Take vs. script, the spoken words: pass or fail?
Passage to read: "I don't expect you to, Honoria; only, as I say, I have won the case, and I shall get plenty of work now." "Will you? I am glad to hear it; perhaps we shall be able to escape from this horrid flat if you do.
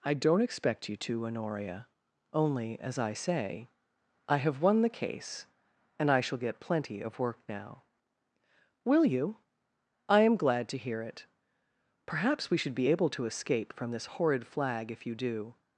fail